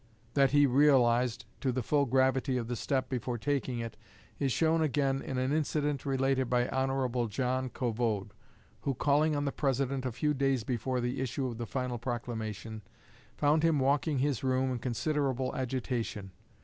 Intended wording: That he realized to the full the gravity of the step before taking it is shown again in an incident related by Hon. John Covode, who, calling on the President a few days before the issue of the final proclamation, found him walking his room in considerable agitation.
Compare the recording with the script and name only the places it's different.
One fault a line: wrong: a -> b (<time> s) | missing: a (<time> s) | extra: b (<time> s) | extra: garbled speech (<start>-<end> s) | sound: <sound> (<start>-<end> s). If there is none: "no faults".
no faults